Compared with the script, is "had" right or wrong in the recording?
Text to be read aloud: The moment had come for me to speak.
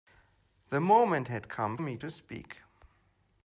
right